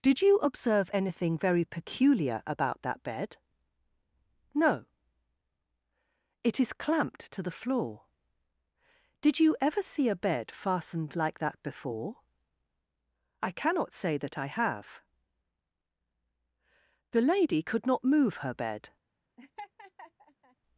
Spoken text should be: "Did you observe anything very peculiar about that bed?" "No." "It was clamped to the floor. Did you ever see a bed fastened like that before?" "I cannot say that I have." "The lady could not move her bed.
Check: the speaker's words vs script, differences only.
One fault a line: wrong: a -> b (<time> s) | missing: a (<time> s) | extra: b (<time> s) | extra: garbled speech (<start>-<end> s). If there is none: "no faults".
wrong: was -> is (6.6 s)